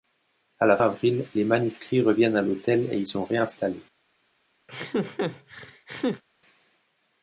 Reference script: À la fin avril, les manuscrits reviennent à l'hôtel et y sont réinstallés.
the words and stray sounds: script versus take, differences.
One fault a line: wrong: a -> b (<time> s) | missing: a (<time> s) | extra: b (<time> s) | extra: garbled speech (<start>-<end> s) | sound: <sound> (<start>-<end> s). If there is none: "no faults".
missing: fin (0.8 s)
sound: laugh (4.7-6.2 s)